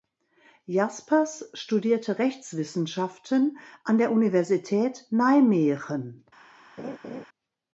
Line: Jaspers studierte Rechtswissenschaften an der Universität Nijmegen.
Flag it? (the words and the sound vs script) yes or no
yes